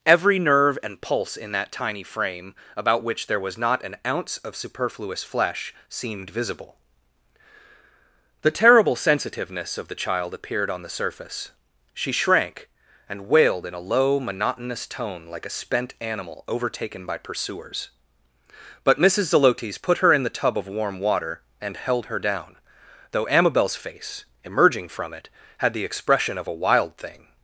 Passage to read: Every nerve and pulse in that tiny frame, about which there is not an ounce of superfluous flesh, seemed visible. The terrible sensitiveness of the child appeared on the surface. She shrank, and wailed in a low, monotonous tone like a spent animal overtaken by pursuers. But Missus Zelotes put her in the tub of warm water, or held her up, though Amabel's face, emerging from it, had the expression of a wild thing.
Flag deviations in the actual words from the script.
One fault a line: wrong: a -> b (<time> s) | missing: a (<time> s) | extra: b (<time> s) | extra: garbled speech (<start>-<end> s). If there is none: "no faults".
wrong: is -> was (3.4 s)
wrong: or -> and (21.6 s)
wrong: up -> down (22.2 s)